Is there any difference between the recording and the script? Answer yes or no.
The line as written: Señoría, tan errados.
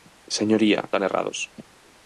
no